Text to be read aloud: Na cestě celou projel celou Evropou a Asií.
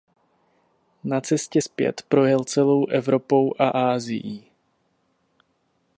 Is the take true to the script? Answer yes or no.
no